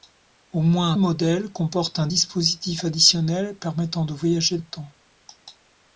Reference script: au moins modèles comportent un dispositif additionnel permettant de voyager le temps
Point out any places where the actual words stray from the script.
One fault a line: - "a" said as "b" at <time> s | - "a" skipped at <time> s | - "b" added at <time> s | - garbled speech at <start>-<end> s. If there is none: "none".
none